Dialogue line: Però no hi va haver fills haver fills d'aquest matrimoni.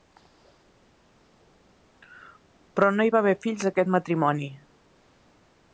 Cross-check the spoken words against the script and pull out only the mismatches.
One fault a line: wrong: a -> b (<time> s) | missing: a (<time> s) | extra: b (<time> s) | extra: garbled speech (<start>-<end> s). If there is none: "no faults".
missing: haver fills (3.7 s)